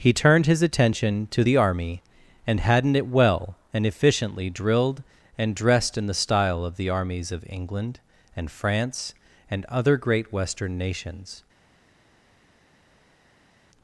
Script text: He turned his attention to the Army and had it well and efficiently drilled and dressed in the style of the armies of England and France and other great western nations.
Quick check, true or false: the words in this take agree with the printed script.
false